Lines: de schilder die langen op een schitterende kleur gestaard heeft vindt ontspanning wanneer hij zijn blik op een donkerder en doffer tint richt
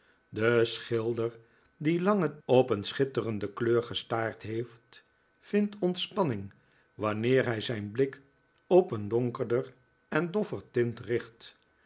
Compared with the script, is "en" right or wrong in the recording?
right